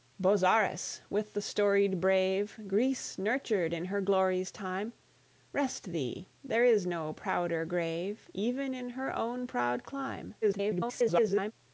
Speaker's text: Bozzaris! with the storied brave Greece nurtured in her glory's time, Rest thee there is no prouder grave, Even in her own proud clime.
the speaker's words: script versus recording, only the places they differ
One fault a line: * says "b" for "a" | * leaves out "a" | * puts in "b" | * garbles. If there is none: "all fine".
* garbles